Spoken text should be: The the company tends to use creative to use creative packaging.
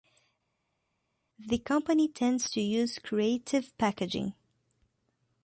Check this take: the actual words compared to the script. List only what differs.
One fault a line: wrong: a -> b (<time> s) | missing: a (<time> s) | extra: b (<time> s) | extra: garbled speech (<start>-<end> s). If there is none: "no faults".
missing: the (1.6 s)
missing: to use creative (3.8 s)